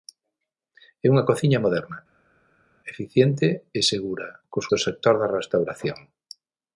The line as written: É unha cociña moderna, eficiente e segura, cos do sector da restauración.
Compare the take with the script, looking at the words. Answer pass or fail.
pass